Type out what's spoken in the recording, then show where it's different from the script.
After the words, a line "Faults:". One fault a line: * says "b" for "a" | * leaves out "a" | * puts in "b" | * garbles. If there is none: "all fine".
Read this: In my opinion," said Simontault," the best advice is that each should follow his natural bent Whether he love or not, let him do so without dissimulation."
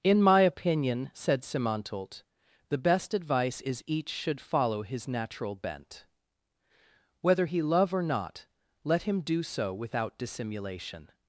In my opinion," said Simontault," the best advice is each should follow his natural bent Whether he love or not, let him do so without dissimulation."
Faults:
* leaves out "that"